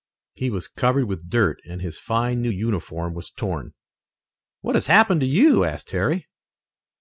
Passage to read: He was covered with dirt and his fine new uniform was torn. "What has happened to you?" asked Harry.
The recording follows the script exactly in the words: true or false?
true